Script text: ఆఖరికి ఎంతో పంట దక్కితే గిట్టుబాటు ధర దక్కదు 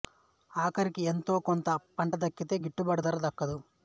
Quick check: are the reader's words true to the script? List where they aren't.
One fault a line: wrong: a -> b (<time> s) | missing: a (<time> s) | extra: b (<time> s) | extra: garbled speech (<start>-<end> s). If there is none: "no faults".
extra: కొంత (1.5 s)